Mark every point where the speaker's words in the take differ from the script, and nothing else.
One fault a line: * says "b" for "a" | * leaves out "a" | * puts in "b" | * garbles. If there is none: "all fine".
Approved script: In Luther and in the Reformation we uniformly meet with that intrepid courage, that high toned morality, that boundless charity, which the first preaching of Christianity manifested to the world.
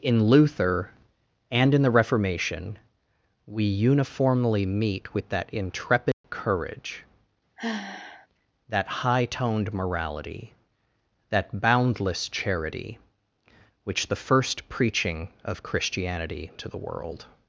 * leaves out "manifested"